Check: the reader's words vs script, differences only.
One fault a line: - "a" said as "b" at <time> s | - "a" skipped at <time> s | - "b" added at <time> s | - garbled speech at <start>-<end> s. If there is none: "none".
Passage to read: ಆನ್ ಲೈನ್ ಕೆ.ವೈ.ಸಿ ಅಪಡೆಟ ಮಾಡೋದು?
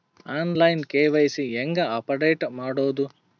- "ಹೇಂಗ" added at 1.5 s